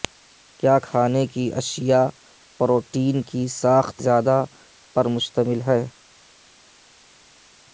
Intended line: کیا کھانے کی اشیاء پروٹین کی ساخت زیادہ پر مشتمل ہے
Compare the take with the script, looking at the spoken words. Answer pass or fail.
pass